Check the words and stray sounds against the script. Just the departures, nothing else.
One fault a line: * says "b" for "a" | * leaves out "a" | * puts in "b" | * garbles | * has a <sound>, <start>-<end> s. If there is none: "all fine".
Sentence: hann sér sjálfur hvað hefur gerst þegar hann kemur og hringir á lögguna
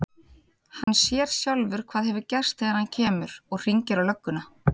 * has a dropout, 0.8-0.9 s